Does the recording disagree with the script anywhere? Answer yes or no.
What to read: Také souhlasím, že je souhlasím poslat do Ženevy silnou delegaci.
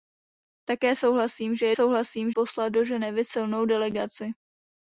no